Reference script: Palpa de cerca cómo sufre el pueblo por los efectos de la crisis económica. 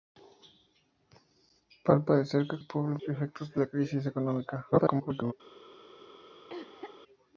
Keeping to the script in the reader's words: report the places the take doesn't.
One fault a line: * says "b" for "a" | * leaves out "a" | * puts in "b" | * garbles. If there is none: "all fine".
* leaves out "cómo sufre"
* leaves out "por los"
* garbles